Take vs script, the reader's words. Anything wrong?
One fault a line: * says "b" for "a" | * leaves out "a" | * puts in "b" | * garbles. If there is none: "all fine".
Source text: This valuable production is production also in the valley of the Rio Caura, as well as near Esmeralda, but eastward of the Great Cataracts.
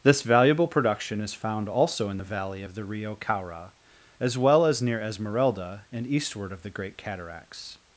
* says "found" for "production"
* says "and" for "but"